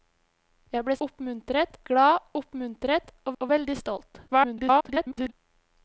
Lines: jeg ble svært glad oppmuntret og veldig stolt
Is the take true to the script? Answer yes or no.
no